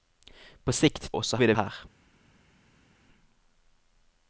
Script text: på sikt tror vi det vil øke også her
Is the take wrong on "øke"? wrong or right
wrong